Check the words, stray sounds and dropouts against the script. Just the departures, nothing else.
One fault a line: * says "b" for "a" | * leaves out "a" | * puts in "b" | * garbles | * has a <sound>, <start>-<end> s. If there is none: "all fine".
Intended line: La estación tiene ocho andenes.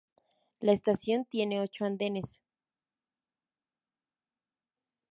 all fine